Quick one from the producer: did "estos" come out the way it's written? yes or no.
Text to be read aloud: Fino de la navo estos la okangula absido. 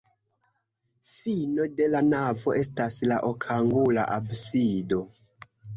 no